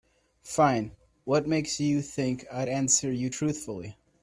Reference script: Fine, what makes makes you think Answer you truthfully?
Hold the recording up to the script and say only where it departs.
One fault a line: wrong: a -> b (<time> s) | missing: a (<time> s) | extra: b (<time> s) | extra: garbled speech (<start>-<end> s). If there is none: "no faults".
missing: makes (1.8 s)
extra: I'd (2.5 s)